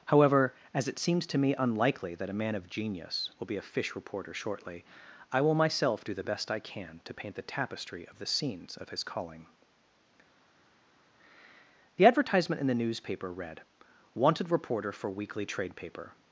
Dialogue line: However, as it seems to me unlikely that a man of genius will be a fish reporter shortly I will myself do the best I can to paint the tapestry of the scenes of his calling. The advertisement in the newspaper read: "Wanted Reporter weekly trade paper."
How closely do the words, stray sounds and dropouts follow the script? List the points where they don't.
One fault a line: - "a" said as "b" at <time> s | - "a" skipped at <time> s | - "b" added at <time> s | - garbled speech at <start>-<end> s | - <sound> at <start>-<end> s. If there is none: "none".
- "for" added at 14.9 s